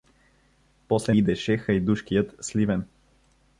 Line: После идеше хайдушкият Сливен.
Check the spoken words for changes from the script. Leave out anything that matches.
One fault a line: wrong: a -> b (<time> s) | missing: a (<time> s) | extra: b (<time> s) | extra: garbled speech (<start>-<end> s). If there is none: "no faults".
no faults